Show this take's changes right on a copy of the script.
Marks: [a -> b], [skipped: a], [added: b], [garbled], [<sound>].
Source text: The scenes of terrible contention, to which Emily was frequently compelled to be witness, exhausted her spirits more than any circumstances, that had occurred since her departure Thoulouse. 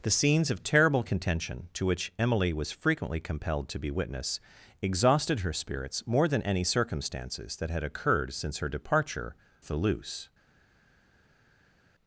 The scenes of terrible contention, to which Emily was frequently compelled to be witness, exhausted her spirits more than any circumstances, that had occurred since her departure Thoulouse.